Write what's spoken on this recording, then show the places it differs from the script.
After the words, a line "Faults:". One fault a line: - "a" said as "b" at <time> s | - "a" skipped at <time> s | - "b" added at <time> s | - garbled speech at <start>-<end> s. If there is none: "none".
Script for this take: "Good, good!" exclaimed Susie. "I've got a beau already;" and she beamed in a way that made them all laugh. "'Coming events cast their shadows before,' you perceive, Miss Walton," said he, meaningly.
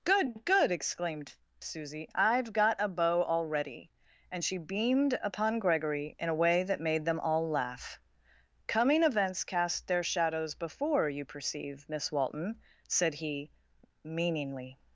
"Good, good!" exclaimed Susie. "I've got a beau already;" and she beamed upon Gregory in a way that made them all laugh. "'Coming events cast their shadows before,' you perceive, Miss Walton," said he, meaningly.
Faults:
- "upon Gregory" added at 5.2 s